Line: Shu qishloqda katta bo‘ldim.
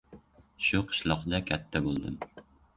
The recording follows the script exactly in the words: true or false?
true